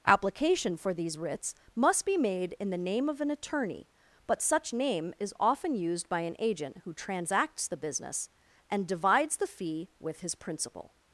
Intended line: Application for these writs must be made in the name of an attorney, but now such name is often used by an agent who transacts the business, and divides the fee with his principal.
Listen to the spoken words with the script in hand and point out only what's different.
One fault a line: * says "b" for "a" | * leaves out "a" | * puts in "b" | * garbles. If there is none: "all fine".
* leaves out "now"